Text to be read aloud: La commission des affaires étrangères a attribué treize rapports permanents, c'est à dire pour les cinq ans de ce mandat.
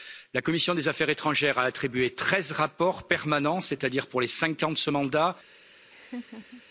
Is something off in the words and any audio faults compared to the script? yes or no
yes